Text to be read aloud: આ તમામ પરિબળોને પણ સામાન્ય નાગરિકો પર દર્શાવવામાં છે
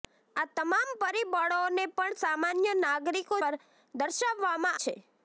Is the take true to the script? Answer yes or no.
yes